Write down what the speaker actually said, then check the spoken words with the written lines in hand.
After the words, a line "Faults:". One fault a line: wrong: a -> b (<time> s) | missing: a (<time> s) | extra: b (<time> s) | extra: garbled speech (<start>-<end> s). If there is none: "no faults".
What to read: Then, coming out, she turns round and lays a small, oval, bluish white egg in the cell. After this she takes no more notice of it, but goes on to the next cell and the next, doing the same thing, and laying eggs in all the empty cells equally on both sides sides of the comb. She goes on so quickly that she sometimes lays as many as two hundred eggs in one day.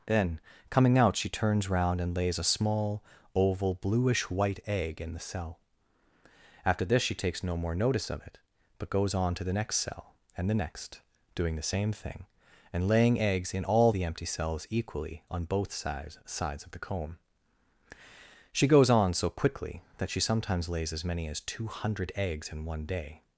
Then, coming out, she turns round and lays a small, oval, bluish white egg in the cell. After this she takes no more notice of it, but goes on to the next cell and the next, doing the same thing, and laying eggs in all the empty cells equally on both sides sides of the comb. She goes on so quickly that she sometimes lays as many as two hundred eggs in one day.
Faults:
no faults